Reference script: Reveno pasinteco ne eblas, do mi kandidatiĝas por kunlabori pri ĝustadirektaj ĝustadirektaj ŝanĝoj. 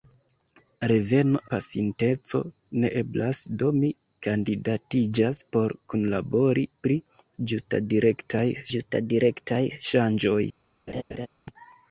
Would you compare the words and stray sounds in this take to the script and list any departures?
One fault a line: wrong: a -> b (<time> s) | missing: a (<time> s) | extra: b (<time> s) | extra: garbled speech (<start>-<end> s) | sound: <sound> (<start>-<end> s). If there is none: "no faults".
sound: laugh (10.9-11.3 s)